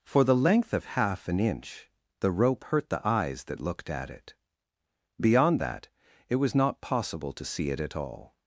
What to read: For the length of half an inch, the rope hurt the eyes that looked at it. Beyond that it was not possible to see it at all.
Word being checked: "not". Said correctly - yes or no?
yes